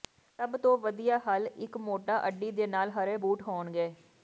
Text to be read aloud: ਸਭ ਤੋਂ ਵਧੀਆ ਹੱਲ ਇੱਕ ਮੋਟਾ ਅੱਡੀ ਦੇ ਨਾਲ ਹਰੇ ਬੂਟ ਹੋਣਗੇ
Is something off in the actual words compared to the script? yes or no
no